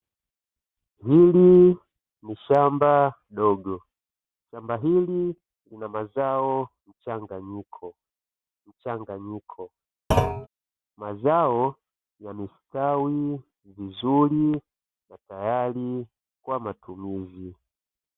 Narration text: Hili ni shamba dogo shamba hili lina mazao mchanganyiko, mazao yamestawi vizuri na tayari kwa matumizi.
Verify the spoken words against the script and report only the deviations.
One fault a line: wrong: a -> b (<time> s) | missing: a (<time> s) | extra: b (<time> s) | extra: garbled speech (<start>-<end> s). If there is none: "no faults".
extra: mchanganyiko (8.7 s)